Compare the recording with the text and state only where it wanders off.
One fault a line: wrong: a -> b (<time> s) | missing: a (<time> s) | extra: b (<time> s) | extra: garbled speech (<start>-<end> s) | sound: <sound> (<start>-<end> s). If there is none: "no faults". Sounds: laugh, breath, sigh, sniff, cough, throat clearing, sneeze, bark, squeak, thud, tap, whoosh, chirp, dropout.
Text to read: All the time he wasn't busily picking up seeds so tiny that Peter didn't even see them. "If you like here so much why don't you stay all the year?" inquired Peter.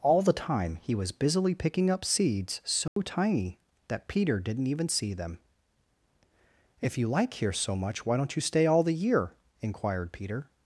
wrong: wasn't -> was (0.9 s)
sound: dropout (2.9-3.0 s)